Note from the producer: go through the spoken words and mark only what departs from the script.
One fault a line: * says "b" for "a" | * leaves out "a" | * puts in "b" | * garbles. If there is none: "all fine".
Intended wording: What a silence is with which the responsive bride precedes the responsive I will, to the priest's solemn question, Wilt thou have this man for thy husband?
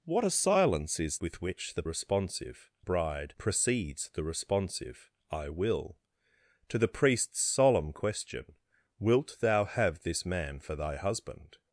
all fine